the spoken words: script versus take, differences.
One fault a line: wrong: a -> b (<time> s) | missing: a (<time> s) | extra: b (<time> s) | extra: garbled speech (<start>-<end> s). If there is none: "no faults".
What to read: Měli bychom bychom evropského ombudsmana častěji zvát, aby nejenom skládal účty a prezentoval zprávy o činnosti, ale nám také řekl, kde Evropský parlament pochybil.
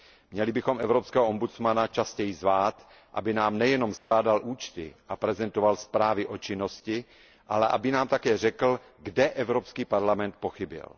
missing: bychom (0.8 s)
extra: nám (3.3 s)
extra: aby (7.7 s)